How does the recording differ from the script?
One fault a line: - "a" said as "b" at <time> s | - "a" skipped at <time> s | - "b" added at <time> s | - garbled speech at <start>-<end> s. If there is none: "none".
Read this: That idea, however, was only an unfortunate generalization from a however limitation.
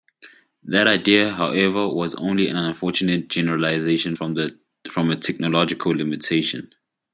- "however" said as "technological" at 5.2 s